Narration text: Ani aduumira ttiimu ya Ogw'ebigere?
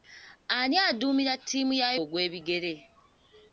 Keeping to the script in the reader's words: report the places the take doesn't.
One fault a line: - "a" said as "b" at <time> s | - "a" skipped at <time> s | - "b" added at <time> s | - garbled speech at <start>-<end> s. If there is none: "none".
none